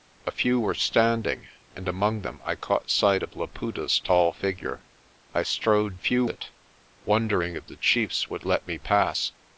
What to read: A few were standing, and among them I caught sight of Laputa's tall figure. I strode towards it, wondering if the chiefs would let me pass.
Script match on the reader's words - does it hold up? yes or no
no